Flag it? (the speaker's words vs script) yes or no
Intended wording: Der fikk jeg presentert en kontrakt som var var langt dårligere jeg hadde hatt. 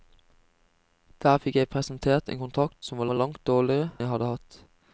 no